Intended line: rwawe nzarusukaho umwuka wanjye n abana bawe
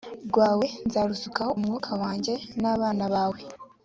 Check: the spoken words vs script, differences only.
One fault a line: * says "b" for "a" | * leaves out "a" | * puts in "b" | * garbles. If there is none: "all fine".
all fine